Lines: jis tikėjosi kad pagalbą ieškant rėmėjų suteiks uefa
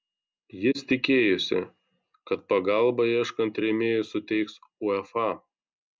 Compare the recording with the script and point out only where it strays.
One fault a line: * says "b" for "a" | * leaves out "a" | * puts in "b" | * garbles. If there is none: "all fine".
all fine